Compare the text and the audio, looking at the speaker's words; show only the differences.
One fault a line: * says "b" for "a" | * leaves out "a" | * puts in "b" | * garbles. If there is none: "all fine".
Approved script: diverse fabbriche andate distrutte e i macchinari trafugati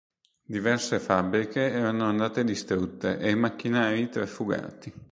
* puts in "erano"